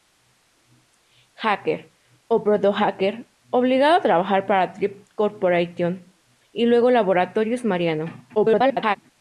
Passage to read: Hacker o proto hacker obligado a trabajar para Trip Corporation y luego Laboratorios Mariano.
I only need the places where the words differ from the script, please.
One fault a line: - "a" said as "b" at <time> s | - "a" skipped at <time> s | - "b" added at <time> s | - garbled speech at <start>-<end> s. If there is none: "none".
- garbled speech at 8.3-9.0 s